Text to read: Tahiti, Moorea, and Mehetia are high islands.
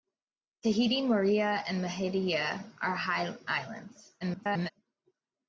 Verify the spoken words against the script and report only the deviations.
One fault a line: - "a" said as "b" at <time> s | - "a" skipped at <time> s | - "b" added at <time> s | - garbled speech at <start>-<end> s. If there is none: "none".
- garbled speech at 4.2-4.7 s